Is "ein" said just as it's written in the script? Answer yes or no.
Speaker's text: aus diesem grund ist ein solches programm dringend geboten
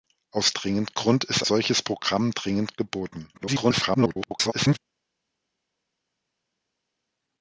no